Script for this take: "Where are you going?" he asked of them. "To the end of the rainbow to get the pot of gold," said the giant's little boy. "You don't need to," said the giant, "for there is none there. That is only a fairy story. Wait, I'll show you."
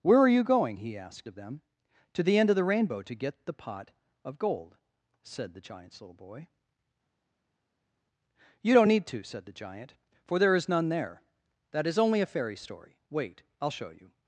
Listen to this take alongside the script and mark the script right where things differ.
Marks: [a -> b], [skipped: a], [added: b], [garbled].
"Where are you going?" he asked of them. "To the end of the rainbow to get the pot of gold," said the giant's little boy. "You don't need to," said the giant, "for there is none there. That is only a fairy story. Wait, I'll show you."